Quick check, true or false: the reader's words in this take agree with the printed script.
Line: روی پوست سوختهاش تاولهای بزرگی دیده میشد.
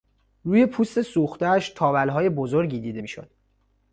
true